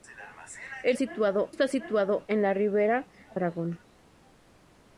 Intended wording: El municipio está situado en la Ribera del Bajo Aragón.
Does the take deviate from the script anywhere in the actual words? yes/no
yes